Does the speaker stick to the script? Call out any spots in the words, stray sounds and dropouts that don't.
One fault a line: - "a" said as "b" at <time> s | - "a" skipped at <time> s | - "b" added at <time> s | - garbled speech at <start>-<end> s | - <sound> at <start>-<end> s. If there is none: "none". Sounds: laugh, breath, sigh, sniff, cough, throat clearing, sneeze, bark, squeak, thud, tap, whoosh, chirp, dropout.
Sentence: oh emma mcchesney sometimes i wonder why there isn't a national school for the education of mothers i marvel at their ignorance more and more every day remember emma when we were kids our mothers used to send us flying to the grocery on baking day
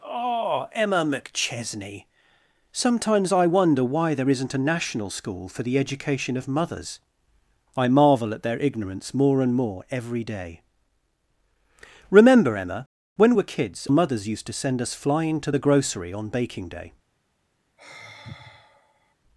- "we" skipped at 13.3 s
- "our" skipped at 13.9 s
- sigh at 17.8-19.1 s